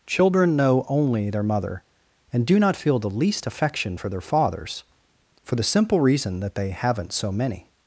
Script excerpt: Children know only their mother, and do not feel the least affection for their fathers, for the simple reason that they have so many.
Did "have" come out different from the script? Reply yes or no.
yes